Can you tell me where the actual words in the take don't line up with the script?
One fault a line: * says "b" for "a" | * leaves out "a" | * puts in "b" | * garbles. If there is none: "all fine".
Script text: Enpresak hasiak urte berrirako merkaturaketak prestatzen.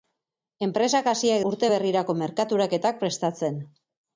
all fine